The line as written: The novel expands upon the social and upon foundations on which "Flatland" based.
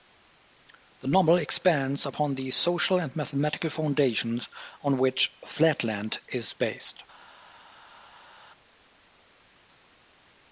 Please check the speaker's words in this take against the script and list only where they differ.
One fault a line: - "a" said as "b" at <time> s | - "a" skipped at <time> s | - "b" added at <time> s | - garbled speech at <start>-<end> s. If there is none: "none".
- "upon" said as "mathematical" at 3.2 s
- "is" added at 6.3 s